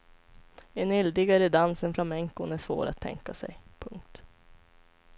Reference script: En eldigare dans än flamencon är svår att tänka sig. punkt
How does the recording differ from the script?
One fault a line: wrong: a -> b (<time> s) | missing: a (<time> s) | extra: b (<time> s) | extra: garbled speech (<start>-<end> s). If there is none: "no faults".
no faults